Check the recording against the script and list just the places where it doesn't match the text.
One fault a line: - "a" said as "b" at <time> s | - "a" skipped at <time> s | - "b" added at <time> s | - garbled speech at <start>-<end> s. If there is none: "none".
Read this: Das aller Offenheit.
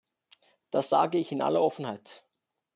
- "sage ich in" added at 0.9 s